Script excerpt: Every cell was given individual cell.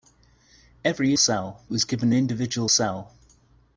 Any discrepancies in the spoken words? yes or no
no